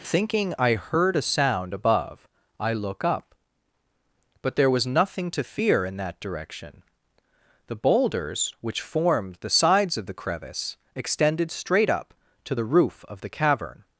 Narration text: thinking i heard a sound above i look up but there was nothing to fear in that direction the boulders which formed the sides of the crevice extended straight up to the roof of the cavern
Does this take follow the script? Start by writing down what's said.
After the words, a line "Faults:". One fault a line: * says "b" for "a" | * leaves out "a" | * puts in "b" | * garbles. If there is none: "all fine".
thinking i heard a sound above i look up but there was nothing to fear in that direction the boulders which formed the sides of the crevice extended straight up to the roof of the cavern
Faults:
all fine